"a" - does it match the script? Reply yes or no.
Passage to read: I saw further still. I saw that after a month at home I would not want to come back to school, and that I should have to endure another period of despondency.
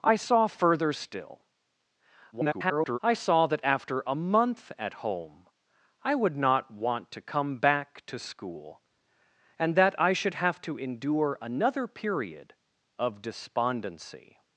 yes